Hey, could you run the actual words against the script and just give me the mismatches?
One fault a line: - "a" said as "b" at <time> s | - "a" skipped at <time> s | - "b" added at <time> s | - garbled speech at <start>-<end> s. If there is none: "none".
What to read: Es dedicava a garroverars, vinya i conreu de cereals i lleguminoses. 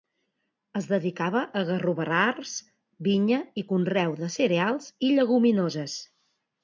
none